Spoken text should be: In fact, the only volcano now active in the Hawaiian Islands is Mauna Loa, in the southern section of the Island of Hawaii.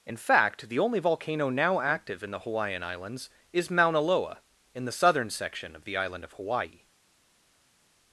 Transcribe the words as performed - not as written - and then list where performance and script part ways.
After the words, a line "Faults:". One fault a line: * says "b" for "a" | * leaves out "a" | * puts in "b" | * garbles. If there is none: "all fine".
In fact, the only volcano now active in the Hawaiian Islands is Mauna Loa, in the southern section of the Island of Hawaii.
Faults:
all fine